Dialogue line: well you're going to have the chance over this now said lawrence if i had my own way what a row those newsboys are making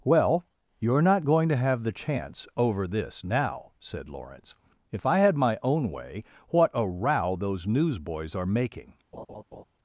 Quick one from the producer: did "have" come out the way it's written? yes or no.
yes